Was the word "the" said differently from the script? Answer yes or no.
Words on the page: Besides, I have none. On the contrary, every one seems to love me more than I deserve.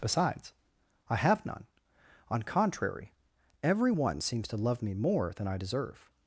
yes